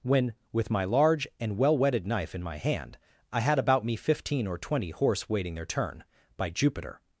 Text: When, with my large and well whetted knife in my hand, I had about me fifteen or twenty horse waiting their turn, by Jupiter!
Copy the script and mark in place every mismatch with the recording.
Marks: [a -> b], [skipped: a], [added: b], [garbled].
When, with my large and well whetted knife in my hand, I had about me fifteen or twenty horse waiting their turn, by Jupiter!